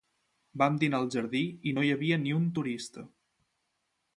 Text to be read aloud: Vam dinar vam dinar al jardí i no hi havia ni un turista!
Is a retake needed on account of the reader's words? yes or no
yes